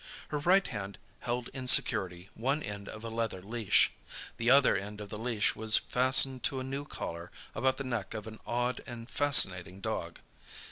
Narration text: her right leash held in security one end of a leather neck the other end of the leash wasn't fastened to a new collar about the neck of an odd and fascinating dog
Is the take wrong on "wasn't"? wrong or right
wrong